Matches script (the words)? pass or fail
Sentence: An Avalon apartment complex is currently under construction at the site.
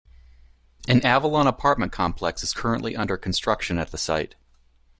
pass